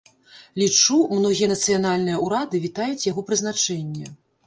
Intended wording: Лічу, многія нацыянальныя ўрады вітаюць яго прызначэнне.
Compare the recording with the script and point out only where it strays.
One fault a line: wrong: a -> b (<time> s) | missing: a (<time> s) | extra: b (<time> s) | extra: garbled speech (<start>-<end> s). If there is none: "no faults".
no faults